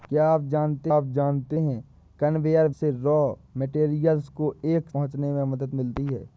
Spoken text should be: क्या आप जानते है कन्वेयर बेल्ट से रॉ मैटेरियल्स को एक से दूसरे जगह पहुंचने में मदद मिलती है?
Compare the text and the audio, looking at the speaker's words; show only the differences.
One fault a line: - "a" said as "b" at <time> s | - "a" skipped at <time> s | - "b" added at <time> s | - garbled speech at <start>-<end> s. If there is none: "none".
- "आप जानते" added at 0.9 s
- "बेल्ट" skipped at 2.7 s
- "से दूसरे जगह" skipped at 4.9 s